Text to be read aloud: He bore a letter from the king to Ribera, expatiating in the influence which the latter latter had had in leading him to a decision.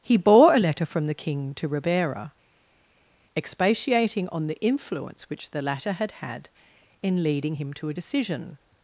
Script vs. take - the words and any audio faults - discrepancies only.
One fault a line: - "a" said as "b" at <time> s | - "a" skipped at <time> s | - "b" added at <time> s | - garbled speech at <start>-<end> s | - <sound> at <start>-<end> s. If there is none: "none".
- "in" said as "on" at 4.3 s
- "latter" skipped at 5.9 s